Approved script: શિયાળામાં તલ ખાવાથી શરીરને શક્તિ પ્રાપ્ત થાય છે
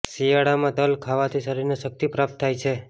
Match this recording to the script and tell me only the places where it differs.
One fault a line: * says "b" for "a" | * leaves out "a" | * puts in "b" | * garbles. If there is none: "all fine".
all fine